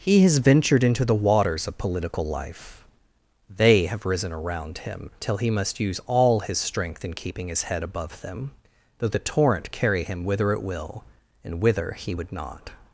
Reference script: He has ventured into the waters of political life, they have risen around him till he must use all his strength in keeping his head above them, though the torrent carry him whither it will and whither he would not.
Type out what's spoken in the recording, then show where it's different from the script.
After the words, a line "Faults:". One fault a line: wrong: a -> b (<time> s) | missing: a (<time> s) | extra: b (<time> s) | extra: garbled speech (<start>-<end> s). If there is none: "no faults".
He has ventured into the waters of political life, they have risen around him till he must use all his strength in keeping his head above them, though the torrent carry him whither it will and whither he would not.
Faults:
no faults